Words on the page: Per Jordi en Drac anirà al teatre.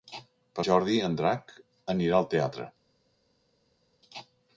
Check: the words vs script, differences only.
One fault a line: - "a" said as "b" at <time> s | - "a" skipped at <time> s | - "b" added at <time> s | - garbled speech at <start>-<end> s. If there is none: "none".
none